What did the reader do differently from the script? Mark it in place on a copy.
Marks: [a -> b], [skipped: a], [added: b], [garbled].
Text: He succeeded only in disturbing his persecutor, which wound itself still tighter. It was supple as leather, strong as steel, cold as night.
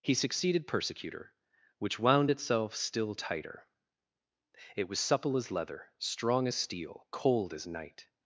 He succeeded [skipped: only in disturbing his] persecutor, which wound itself still tighter. It was supple as leather, strong as steel, cold as night.